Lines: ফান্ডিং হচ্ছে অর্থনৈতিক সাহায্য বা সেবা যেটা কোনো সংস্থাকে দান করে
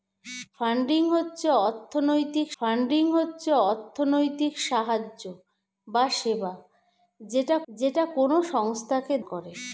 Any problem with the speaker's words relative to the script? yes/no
yes